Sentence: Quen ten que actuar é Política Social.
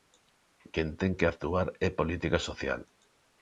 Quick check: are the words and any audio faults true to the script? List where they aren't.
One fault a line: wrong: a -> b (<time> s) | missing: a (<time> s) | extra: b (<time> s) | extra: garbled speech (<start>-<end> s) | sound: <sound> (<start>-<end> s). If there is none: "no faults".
no faults